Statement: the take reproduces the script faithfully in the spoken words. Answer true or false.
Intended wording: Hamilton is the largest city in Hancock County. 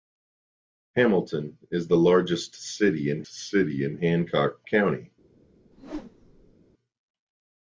false